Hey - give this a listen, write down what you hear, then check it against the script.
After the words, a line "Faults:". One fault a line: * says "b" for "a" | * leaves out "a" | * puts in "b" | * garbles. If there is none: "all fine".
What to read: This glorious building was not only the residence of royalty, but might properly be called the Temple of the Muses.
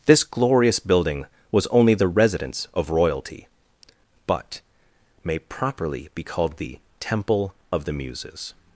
This glorious building was only the residence of royalty, but may properly be called the Temple of the Muses.
Faults:
* leaves out "not"
* says "may" for "might"